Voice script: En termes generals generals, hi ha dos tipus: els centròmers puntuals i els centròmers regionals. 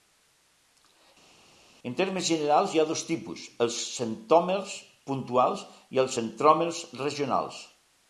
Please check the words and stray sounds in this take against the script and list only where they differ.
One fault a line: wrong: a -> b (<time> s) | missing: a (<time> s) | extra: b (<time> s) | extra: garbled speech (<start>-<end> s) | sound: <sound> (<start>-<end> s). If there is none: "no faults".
missing: generals (2.8 s)